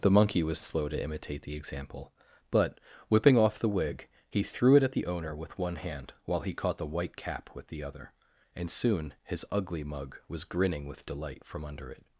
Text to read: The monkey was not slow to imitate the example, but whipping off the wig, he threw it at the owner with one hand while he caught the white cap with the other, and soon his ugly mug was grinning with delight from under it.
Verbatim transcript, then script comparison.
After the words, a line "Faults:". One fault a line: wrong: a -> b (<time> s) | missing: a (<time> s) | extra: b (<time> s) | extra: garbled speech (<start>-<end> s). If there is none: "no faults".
The monkey was slow to imitate the example, but whipping off the wig, he threw it at the owner with one hand while he caught the white cap with the other, and soon his ugly mug was grinning with delight from under it.
Faults:
missing: not (0.6 s)